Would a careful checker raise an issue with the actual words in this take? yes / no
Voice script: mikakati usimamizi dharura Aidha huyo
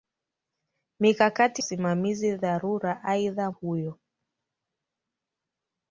no